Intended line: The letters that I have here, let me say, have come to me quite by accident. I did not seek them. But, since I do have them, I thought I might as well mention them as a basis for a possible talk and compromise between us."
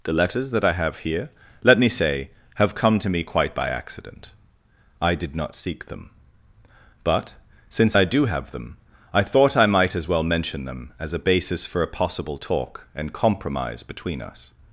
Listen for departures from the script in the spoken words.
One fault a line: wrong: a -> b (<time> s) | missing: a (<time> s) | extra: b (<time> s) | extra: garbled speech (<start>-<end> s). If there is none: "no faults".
no faults